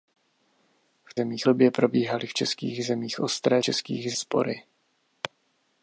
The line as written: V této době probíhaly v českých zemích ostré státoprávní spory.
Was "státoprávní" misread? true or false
true